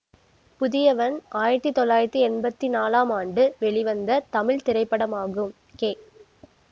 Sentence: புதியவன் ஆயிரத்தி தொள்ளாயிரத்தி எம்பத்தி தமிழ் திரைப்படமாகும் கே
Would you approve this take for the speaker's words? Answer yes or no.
no